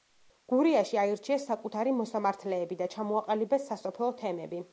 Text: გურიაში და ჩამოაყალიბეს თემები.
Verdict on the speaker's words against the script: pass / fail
fail